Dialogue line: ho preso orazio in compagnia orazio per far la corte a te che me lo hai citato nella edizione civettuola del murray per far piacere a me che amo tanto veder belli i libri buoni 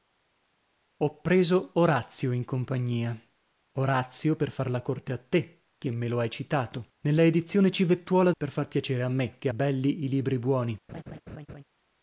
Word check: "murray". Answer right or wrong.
wrong